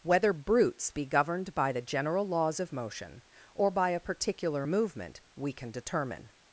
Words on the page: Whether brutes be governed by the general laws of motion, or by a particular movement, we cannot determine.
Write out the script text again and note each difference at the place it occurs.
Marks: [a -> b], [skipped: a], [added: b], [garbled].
Whether brutes be governed by the general laws of motion, or by a particular movement, we [cannot -> can] determine.